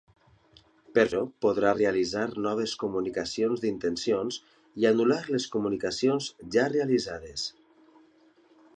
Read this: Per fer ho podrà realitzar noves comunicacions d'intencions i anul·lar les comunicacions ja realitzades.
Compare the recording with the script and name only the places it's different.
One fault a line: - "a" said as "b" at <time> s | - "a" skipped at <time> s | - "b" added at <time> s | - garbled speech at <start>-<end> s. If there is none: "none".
- "fer" skipped at 1.0 s